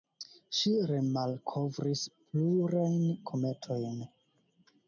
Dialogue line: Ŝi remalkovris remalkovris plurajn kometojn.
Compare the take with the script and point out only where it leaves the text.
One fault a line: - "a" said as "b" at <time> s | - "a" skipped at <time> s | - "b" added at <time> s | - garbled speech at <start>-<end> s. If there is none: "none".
- "remalkovris" skipped at 2.0 s